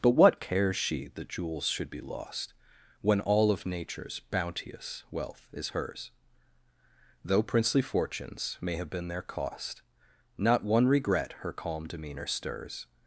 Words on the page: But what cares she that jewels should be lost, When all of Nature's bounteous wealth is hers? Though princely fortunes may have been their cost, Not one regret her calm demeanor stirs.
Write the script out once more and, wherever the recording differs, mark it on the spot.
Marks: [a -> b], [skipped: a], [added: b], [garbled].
But what cares she that jewels should be lost, When all of Nature's bounteous wealth is hers? Though princely fortunes may have been their cost, Not one regret her calm demeanor stirs.